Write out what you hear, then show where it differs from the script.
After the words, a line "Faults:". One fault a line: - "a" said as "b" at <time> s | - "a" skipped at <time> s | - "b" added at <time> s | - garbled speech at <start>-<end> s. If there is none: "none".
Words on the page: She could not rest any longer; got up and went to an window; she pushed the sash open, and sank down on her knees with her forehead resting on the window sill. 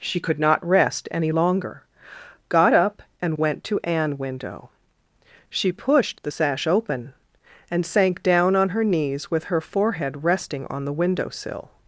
She could not rest any longer; got up and went to an window; she pushed the sash open, and sank down on her knees with her forehead resting on the window sill.
Faults:
none